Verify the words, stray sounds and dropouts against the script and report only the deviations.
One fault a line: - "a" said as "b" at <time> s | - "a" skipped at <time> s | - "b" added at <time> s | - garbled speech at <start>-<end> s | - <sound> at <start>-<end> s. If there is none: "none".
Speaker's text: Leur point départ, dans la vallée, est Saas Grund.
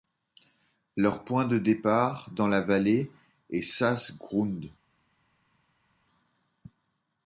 - "de" added at 1.4 s